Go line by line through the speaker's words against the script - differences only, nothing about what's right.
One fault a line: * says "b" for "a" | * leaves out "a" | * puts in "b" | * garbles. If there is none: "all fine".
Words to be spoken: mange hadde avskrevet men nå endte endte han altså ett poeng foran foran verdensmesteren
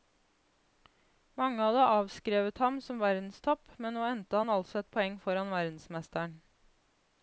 * puts in "ham som verdenstopp"
* leaves out "endte"
* leaves out "foran"